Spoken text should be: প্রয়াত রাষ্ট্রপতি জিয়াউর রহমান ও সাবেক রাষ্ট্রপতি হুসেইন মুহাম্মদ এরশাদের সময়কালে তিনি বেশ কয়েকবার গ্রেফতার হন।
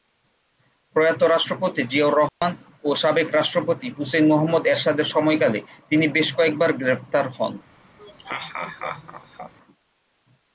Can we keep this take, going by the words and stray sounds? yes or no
no